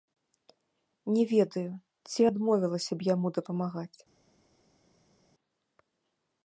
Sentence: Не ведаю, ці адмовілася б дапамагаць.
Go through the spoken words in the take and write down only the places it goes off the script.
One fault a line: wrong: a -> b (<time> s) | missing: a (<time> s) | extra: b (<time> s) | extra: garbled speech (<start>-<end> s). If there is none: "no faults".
extra: яму (3.1 s)